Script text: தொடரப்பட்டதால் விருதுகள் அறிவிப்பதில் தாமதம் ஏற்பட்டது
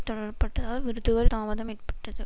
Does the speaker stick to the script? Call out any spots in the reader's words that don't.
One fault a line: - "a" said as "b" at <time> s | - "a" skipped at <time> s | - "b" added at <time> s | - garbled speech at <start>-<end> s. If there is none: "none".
- "அறிவிப்பதில்" skipped at 1.3 s